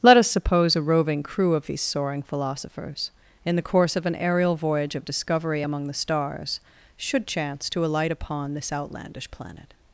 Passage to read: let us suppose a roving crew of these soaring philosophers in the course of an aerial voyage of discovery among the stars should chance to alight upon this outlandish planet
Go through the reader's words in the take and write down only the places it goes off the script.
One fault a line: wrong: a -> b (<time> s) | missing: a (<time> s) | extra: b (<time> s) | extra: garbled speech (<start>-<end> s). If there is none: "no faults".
no faults